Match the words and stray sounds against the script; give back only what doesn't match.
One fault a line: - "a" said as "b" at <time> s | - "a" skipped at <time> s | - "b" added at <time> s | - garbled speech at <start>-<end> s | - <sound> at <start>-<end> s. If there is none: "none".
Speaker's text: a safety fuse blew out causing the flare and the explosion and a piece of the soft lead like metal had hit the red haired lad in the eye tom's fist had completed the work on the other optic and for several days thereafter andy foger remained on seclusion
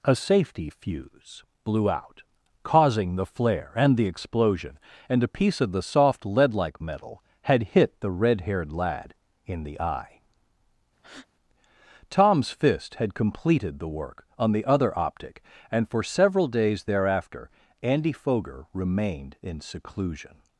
- breath at 11.0-11.3 s
- "on" said as "in" at 19.4 s